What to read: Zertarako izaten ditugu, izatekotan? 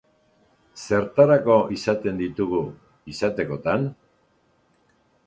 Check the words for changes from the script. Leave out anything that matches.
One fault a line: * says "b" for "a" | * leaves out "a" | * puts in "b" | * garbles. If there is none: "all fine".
all fine